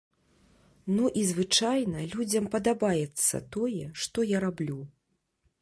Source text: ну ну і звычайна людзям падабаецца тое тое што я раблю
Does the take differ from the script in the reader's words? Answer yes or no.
yes